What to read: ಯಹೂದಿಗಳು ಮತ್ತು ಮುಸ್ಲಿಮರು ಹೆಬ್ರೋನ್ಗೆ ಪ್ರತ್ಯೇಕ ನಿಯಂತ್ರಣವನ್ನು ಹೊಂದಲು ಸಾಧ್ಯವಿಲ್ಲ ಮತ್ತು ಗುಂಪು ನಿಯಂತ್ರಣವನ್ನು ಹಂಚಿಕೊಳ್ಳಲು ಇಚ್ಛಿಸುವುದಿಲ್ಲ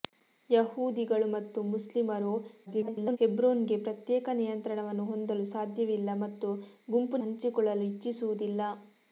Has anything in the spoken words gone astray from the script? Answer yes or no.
yes